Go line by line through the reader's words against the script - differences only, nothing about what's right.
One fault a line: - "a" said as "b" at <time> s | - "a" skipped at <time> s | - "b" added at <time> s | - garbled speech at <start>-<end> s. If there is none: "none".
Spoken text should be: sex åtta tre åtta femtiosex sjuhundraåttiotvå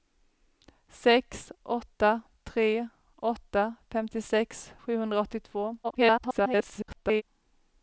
- garbled speech at 5.8-7.2 s